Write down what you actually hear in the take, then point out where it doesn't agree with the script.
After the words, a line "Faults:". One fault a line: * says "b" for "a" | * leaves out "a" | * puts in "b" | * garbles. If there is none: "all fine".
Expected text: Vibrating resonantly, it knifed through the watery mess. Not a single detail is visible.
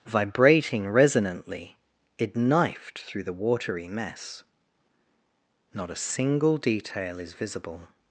Vibrating resonantly, it knifed through the watery mess. Not a single detail is visible.
Faults:
all fine